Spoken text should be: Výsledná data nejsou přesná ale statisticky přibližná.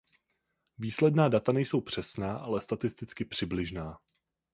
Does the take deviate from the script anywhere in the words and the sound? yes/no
no